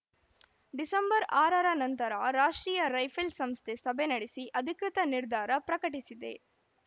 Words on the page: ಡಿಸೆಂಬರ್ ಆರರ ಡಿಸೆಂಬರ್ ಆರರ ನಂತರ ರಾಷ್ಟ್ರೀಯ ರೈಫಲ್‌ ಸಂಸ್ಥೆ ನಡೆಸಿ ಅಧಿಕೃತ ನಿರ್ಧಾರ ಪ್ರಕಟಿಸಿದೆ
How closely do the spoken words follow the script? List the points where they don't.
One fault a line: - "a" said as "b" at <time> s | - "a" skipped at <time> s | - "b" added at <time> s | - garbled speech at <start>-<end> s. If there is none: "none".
- "ಡಿಸೆಂಬರ್ ಆರರ" skipped at 1.7 s
- "ಸಭೆ" added at 3.8 s